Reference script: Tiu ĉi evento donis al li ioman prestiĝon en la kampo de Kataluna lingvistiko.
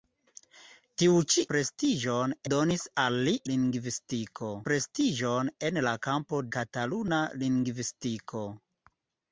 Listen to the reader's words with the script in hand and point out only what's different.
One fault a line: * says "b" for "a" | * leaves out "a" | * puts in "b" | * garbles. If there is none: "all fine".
* says "prestiĝon" for "evento"
* says "lingvistiko" for "ioman"
* leaves out "de"